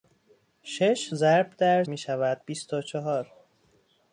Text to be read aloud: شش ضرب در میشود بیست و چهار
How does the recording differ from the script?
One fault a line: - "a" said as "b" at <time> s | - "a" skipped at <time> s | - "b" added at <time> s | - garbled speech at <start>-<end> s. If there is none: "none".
none